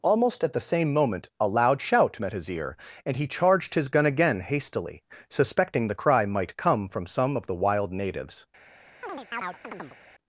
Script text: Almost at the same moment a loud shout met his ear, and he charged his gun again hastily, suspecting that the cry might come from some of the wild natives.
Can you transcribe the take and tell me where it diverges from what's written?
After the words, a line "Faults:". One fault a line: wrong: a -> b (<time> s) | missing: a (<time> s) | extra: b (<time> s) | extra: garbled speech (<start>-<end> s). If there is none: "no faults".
Almost at the same moment a loud shout met his ear, and he charged his gun again hastily, suspecting the cry might come from some of the wild natives.
Faults:
missing: that (5.9 s)